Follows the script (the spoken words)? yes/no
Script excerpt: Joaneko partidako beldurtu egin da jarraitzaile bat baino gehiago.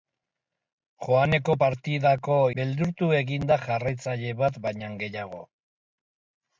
yes